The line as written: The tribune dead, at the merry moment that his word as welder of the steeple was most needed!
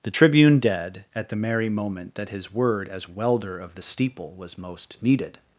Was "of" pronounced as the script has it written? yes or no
yes